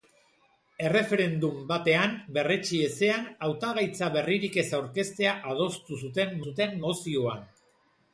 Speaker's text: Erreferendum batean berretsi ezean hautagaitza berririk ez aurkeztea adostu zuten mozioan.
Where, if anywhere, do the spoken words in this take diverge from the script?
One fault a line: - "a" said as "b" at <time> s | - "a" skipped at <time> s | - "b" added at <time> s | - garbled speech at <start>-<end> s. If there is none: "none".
- "zuten" added at 6.5 s